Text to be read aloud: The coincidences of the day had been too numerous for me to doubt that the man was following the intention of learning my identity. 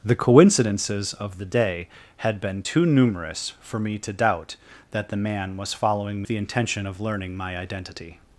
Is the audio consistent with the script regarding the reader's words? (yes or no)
yes